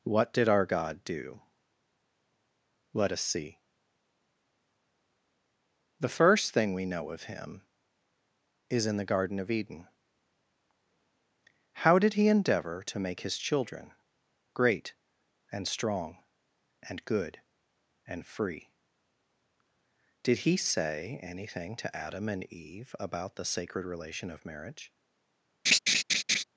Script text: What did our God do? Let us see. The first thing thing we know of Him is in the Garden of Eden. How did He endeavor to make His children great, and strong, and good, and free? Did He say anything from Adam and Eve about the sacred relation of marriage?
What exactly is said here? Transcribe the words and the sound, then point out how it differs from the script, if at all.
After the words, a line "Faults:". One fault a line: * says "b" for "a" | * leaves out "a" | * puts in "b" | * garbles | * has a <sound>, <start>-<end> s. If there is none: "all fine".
What did our God do? Let us see. The first thing we know of Him is in the Garden of Eden. How did He endeavor to make His children great, and strong, and good, and free? Did He say anything to Adam and Eve about the sacred relation of marriage?
Faults:
* leaves out "thing"
* says "to" for "from"
* has a laugh, 25.7-26.4 s